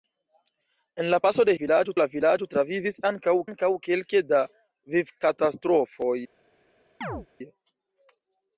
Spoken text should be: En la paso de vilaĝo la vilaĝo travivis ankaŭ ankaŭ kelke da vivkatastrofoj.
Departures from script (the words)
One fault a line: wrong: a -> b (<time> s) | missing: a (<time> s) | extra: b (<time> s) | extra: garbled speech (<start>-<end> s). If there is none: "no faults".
no faults